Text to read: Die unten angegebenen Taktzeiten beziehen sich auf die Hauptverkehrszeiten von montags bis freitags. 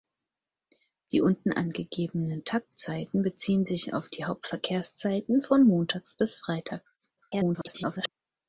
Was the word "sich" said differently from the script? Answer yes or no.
no